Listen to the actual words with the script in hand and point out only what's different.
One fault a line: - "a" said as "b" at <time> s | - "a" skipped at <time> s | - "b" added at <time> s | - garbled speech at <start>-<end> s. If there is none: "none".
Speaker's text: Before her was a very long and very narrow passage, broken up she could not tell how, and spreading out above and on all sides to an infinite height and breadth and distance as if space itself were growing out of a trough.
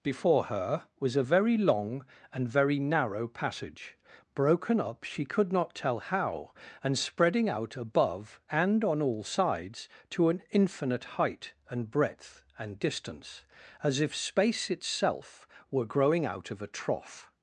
none